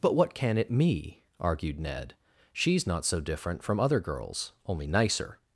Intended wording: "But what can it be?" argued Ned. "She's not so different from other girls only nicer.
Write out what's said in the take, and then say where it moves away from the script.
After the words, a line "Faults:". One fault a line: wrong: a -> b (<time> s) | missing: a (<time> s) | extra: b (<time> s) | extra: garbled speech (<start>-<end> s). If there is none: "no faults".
"But what can it me?" argued Ned. "She's not so different from other girls only nicer.
Faults:
wrong: be -> me (0.7 s)